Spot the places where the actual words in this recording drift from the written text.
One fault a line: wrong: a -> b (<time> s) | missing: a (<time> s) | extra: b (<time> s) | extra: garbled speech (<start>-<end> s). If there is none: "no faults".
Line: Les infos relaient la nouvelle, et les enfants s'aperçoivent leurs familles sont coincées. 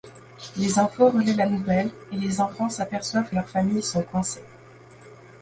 no faults